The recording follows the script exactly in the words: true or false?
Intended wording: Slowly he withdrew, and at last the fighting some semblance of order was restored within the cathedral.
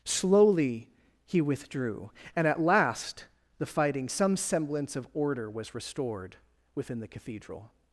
true